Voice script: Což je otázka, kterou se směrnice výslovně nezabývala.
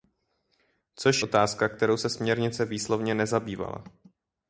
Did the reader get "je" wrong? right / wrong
wrong